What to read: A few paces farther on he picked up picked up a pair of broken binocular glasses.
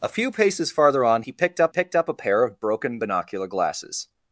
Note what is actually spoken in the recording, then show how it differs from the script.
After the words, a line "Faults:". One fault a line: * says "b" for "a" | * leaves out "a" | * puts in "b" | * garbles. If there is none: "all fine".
A few paces farther on he picked up picked up a pair of broken binocular glasses.
Faults:
all fine